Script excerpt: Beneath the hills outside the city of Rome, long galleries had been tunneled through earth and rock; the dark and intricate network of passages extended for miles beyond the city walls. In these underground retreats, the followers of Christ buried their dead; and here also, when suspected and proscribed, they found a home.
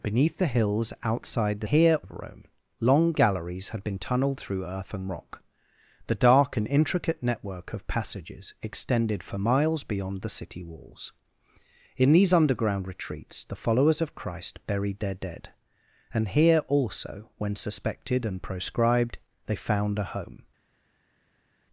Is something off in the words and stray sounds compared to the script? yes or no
yes